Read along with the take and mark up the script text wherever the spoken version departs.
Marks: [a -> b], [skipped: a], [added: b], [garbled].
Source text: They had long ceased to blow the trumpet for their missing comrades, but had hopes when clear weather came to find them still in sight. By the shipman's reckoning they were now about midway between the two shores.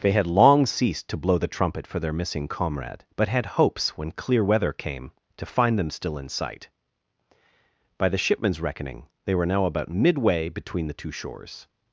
They had long ceased to blow the trumpet for their missing [comrades, -> comrade] but had hopes when clear weather came to find them still in sight. By the shipman's reckoning they were now about midway between the two shores.